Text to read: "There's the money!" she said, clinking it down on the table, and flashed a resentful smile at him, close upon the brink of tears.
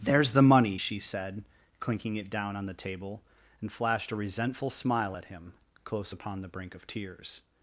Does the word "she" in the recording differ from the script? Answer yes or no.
no